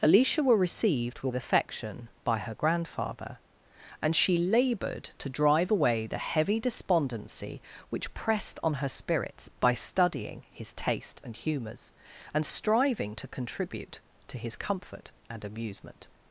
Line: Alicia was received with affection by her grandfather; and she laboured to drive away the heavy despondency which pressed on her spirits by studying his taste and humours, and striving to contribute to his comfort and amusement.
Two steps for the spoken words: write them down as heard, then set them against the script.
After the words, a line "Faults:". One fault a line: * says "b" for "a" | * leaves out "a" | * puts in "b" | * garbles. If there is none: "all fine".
Alicia were received with affection by her grandfather; and she laboured to drive away the heavy despondency which pressed on her spirits by studying his taste and humours, and striving to contribute to his comfort and amusement.
Faults:
* says "were" for "was"